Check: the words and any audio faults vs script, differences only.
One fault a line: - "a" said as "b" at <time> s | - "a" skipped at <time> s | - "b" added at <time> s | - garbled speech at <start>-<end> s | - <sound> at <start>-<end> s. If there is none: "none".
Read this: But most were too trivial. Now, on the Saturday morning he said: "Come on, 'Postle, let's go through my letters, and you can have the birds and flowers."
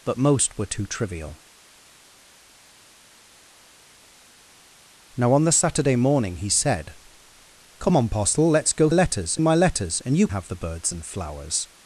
- "through" said as "letters" at 8.9 s
- "can" skipped at 10.3 s